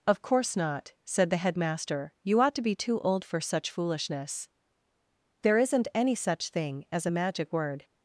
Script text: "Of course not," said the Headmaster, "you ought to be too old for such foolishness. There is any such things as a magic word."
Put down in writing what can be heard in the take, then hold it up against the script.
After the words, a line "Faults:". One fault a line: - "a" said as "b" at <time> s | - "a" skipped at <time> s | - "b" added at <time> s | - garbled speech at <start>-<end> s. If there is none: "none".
"Of course not," said the Headmaster, "you ought to be too old for such foolishness. There isn't any such thing as a magic word."
Faults:
- "is" said as "isn't" at 5.6 s
- "things" said as "thing" at 6.5 s